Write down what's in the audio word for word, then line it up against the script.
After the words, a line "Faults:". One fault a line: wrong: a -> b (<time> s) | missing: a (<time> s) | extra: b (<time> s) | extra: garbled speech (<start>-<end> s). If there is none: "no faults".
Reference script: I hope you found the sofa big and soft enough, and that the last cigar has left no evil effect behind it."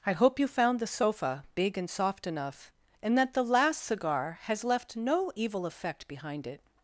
I hope you found the sofa big and soft enough, and that the last cigar has left no evil effect behind it."
Faults:
no faults